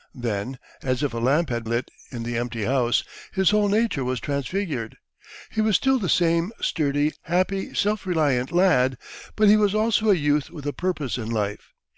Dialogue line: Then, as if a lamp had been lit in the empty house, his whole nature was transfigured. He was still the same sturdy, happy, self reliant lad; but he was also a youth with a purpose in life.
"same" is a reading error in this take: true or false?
false